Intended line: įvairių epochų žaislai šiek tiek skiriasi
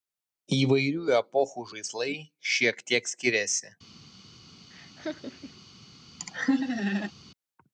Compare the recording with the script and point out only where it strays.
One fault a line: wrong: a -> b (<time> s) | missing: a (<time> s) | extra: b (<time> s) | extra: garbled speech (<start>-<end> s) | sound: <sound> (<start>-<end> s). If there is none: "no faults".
sound: laugh (4.7-5.6 s)
sound: laugh (6.2-7.1 s)